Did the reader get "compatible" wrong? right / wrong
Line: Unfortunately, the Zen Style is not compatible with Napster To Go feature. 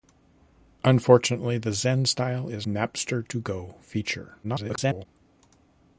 wrong